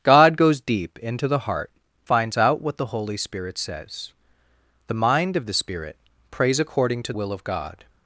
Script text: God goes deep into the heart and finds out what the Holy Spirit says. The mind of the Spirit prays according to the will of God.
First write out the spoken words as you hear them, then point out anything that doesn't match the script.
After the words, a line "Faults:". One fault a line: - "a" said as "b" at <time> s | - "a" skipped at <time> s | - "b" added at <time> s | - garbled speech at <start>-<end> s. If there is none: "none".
God goes deep into the heart finds out what the Holy Spirit says. The mind of the Spirit prays according to will of God.
Faults:
- "and" skipped at 1.7 s
- "the" skipped at 7.1 s